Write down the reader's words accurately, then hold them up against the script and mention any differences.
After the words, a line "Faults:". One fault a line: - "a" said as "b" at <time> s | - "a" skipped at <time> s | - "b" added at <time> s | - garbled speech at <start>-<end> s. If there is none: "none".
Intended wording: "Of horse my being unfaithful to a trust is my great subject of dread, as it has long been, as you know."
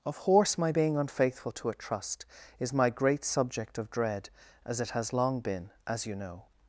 "Of horse my being unfaithful to a trust is my great subject of dread, as it has long been, as you know."
Faults:
none